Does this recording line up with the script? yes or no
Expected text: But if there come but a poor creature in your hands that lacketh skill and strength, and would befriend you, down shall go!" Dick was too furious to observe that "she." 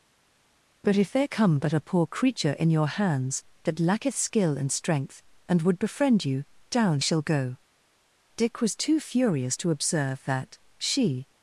yes